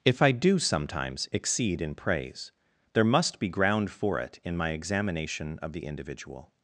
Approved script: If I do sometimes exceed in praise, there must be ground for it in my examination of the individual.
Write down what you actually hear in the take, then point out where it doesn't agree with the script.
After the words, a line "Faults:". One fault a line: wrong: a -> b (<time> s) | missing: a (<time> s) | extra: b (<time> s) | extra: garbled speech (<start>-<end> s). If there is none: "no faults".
If I do sometimes exceed in praise, there must be ground for it in my examination of the individual.
Faults:
no faults